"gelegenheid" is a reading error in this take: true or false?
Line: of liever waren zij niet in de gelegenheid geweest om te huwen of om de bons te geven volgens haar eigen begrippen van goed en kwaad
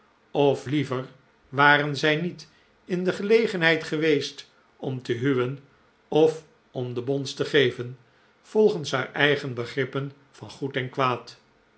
false